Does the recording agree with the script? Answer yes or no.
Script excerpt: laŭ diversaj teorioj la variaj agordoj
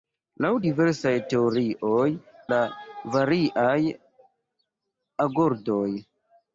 yes